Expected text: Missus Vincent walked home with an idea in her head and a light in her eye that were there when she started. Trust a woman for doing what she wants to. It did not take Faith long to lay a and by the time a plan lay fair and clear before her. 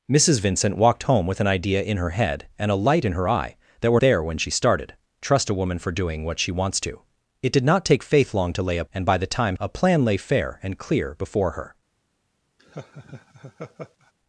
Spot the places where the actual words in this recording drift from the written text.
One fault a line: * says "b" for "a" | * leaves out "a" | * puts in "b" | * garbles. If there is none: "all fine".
all fine